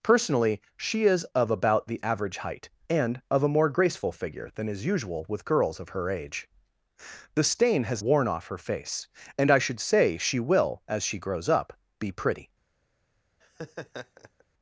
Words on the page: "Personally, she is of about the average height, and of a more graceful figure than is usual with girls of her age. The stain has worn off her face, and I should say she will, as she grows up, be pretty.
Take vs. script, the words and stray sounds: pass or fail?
fail